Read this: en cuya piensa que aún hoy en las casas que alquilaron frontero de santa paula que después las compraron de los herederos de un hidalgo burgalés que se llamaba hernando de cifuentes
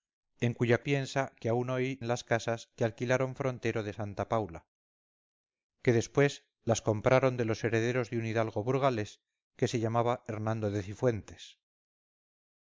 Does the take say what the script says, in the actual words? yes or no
yes